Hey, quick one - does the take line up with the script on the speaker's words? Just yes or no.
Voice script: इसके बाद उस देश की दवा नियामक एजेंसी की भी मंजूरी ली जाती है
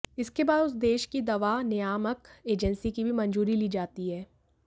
yes